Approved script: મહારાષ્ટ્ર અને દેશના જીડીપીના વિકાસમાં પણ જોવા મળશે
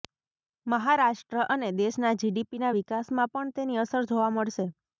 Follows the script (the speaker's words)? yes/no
no